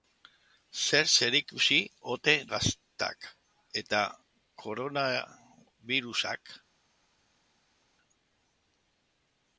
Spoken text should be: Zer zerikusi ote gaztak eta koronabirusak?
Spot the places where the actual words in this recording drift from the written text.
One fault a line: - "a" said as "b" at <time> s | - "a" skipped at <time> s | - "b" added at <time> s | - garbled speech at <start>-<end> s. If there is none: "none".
none